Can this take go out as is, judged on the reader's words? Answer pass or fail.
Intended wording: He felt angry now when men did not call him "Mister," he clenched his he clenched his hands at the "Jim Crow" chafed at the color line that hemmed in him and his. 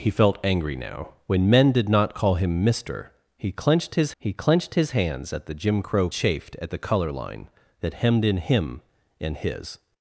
pass